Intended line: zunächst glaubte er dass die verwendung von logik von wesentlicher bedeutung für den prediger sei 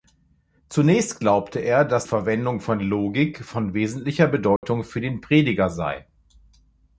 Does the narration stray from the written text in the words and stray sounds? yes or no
yes